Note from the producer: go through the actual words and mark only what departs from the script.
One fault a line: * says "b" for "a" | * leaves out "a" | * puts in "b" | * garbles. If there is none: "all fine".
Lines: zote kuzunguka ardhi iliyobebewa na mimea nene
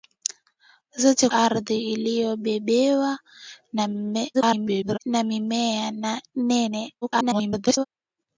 * leaves out "kuzunguka"
* garbles
* garbles